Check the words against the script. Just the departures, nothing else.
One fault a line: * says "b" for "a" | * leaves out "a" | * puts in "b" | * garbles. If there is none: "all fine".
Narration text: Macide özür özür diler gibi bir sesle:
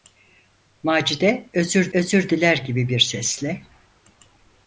all fine